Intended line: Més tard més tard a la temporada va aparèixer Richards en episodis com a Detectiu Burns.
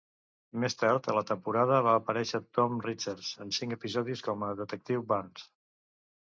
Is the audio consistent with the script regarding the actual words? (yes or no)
no